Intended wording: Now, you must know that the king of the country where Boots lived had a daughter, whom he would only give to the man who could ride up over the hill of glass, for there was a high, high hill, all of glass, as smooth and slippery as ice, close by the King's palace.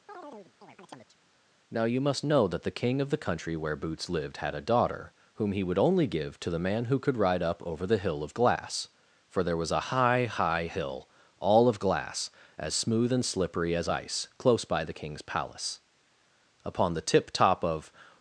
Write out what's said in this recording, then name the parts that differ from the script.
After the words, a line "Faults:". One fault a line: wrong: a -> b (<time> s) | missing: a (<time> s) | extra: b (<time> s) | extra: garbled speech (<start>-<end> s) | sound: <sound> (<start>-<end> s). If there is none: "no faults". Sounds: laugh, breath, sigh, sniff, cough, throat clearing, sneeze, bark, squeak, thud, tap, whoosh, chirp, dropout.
Now, you must know that the king of the country where Boots lived had a daughter, whom he would only give to the man who could ride up over the hill of glass, for there was a high, high hill, all of glass, as smooth and slippery as ice, close by the King's palace. Upon the tip top of
Faults:
sound: chirp (0.1-1.2 s)
extra: Upon the tip top of (16.6 s)